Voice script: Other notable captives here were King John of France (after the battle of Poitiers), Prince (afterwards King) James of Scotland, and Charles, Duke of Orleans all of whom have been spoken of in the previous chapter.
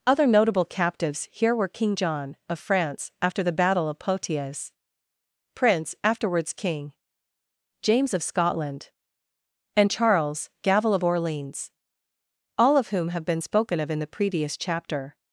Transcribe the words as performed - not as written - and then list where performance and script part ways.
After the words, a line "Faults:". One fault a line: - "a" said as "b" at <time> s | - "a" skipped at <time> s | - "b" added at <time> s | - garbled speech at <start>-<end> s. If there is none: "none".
Other notable captives here were King John of France (after the battle of Poitiers), Prince (afterwards King) James of Scotland, and Charles, Gavel of Orleans all of whom have been spoken of in the previous chapter.
Faults:
- "Duke" said as "Gavel" at 10.6 s